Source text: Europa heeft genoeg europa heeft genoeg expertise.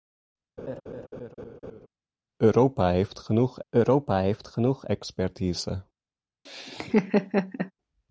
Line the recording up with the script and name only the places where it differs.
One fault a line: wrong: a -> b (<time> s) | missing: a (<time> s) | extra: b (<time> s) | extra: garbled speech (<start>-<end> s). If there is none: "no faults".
no faults